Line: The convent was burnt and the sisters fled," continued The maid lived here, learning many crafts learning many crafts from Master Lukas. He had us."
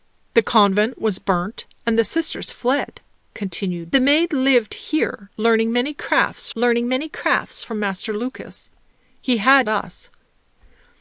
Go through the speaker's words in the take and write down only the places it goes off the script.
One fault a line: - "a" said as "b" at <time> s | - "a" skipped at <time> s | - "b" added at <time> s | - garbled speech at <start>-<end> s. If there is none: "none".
none